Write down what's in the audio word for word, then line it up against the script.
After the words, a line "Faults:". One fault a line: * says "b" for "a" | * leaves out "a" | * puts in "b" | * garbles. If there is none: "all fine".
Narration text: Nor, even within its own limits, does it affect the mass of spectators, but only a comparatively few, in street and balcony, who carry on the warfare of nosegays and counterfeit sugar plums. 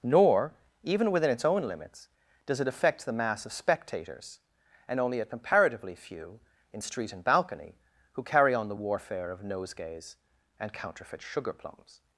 Nor, even within its own limits, does it affect the mass of spectators, and only a comparatively few, in street and balcony, who carry on the warfare of nosegays and counterfeit sugar plums.
Faults:
* says "and" for "but"